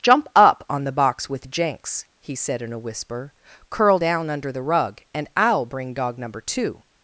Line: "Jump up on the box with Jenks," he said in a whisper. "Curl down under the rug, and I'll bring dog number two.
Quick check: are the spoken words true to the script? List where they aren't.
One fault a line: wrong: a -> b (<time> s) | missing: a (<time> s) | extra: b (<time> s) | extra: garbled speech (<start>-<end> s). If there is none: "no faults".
no faults